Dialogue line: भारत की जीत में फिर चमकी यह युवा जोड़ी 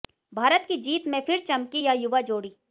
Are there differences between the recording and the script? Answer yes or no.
no